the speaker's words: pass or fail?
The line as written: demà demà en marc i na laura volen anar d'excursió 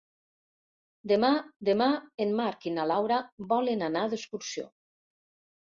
pass